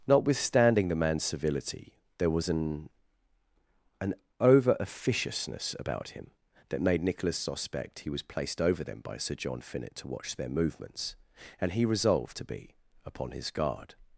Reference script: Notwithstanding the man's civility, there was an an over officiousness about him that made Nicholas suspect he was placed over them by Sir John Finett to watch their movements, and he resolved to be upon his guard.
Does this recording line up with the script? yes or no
yes